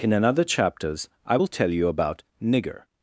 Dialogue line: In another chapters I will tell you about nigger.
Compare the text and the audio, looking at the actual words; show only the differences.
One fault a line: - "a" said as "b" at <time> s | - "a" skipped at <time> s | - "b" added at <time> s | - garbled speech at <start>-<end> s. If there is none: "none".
none